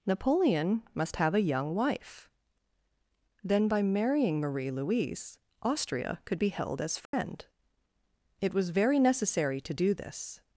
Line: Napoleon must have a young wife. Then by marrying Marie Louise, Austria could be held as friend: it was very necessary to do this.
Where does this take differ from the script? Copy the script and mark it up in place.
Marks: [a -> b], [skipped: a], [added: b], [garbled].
Napoleon must have a young wife. Then by marrying Marie Louise, Austria could be held as friend: it was very necessary to do this.